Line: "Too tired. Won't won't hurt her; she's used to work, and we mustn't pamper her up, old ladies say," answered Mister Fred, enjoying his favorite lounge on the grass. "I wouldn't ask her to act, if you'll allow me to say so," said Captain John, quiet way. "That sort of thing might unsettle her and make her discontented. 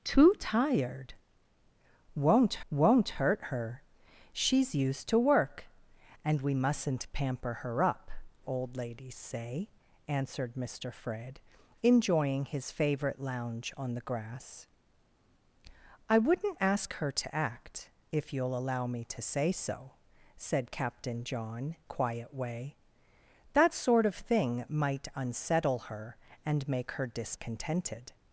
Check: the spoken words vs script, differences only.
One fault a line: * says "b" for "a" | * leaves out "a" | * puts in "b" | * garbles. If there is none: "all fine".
all fine